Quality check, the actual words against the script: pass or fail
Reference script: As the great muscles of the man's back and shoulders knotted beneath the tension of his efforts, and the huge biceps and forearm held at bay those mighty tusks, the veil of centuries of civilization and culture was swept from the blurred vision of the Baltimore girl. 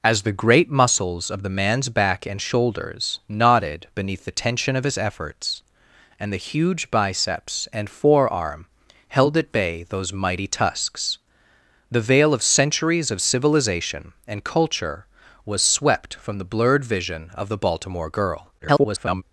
fail